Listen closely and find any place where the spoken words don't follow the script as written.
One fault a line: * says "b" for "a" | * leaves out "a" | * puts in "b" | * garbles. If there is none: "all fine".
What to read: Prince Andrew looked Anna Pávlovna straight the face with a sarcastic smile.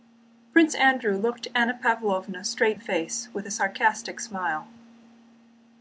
all fine